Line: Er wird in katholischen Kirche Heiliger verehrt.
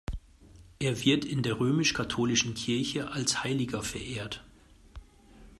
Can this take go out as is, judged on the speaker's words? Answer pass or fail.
fail